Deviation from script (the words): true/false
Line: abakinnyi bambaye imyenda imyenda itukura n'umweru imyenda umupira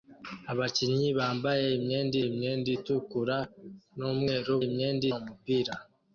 false